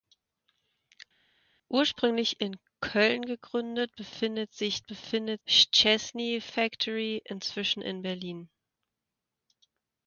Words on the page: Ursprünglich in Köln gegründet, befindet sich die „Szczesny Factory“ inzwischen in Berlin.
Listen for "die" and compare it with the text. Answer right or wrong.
wrong